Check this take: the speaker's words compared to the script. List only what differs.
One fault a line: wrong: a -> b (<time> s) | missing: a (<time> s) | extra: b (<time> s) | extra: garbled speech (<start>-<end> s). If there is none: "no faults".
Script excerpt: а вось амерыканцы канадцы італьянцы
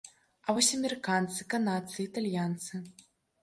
no faults